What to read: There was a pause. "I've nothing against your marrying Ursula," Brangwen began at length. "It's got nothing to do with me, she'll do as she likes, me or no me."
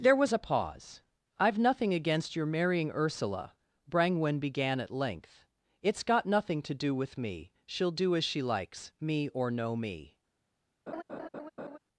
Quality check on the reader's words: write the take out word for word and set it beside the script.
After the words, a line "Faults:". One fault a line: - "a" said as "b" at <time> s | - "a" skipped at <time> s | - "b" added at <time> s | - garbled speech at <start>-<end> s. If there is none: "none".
There was a pause. "I've nothing against your marrying Ursula," Brangwen began at length. "It's got nothing to do with me, she'll do as she likes, me or no me."
Faults:
none